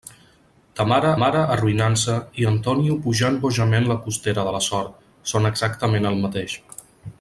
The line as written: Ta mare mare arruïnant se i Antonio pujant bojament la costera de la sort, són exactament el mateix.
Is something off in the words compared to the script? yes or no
no